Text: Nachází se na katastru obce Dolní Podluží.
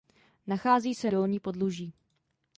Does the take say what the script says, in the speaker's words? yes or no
no